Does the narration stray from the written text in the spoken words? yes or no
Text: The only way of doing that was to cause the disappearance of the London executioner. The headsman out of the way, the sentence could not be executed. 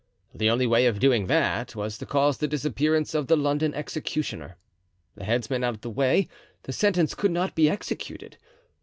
no